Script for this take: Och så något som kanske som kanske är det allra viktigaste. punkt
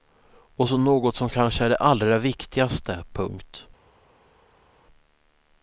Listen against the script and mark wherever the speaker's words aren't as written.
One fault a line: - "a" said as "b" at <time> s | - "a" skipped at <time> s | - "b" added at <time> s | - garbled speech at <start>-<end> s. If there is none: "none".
- "som kanske" skipped at 1.6 s